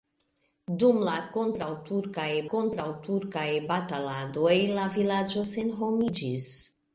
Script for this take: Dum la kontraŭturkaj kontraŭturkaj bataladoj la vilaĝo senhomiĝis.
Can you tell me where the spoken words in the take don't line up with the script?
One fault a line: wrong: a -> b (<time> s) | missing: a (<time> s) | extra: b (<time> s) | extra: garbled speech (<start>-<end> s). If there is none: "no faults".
no faults